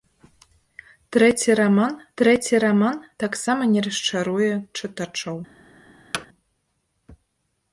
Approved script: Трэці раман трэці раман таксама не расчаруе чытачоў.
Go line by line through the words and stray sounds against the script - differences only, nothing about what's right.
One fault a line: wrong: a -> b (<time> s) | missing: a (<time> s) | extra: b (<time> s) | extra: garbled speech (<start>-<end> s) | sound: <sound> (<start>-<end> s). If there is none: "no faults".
sound: thud (6.1-6.3 s)